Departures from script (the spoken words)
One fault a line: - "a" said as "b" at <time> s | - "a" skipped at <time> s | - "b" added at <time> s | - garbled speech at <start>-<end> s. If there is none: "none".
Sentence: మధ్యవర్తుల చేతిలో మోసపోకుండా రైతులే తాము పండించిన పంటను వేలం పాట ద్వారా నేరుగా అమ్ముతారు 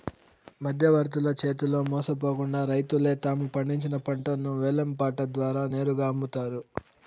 none